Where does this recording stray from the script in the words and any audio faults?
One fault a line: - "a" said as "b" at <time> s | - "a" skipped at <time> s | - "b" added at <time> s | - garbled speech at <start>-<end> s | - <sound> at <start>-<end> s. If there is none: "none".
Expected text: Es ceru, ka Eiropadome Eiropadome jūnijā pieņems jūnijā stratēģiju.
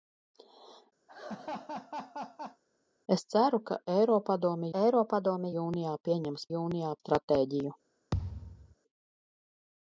- laugh at 1.1-2.6 s
- thud at 8.1-8.7 s